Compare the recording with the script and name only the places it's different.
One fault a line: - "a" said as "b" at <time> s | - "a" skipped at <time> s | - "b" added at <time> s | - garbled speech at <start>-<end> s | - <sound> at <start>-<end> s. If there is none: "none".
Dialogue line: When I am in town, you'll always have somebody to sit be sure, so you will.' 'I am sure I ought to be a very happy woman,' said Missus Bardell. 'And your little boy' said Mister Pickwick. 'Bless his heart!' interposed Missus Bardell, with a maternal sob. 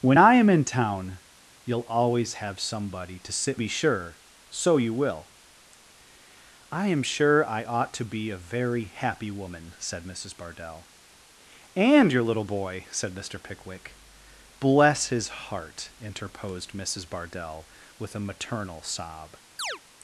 - chirp at 19.6-19.8 s